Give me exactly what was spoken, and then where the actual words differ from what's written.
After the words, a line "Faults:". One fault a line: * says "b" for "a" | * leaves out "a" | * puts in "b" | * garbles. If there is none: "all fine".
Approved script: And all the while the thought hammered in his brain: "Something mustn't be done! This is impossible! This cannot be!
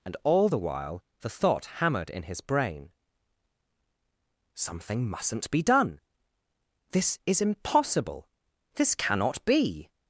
And all the while the thought hammered in his brain: "Something mustn't be done! This is impossible! This cannot be!
Faults:
all fine